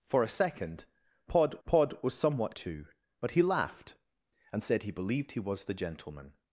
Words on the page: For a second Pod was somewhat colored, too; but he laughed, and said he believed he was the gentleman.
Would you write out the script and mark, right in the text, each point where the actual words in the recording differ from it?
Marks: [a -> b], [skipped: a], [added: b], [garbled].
For a second Pod [added: Pod] was somewhat [skipped: colored,] too; but he laughed, and said he believed he was the gentleman.